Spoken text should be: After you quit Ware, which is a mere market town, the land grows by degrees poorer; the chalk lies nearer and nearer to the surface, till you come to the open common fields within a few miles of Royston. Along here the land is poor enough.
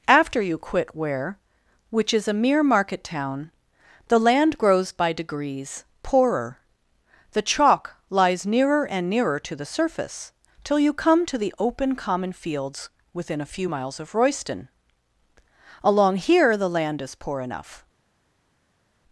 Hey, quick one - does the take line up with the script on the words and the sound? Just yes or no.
yes